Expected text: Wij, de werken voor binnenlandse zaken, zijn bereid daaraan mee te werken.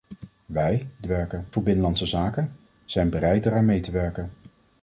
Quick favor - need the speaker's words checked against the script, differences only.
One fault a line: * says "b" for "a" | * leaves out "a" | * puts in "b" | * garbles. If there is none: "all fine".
all fine